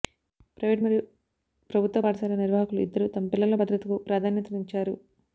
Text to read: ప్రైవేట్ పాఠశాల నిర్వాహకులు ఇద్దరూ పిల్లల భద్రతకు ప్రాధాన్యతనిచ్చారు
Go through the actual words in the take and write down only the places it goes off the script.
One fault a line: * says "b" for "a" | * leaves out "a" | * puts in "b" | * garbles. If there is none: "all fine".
* puts in "మరియు ప్రభుత్వ"
* puts in "తమ"